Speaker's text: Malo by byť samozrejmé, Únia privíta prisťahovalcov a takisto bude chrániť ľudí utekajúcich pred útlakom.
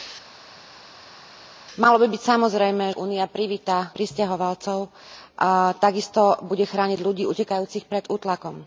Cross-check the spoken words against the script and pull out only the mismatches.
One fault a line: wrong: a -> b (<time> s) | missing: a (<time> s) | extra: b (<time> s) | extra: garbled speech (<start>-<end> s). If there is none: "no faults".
no faults